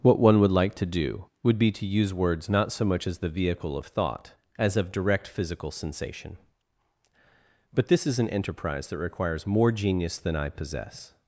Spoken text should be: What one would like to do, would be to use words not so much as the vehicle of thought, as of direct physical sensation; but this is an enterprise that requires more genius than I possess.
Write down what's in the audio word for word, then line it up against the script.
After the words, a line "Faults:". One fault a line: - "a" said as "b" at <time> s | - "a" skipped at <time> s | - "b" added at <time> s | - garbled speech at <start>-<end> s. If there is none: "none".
What one would like to do, would be to use words not so much as the vehicle of thought, as of direct physical sensation; but this is an enterprise that requires more genius than I possess.
Faults:
none